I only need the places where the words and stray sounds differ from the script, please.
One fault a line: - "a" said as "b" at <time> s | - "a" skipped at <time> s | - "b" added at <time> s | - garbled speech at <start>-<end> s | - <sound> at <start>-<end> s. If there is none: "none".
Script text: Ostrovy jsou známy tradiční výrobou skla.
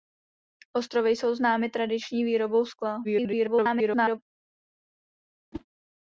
- garbled speech at 3.0-4.2 s
- whoosh at 5.5-5.6 s